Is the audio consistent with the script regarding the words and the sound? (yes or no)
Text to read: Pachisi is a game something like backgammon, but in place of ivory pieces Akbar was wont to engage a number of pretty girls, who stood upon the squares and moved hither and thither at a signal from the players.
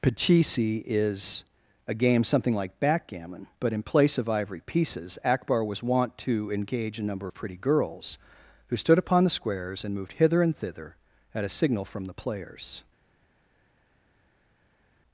yes